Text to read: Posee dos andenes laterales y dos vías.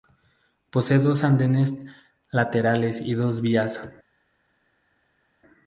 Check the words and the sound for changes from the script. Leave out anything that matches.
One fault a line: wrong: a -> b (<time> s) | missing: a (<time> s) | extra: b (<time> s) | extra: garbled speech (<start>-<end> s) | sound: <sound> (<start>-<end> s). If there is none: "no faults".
no faults